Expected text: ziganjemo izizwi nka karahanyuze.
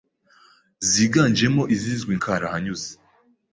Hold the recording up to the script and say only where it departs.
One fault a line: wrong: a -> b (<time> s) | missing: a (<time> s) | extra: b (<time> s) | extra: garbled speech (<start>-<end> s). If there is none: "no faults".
missing: nka (2.1 s)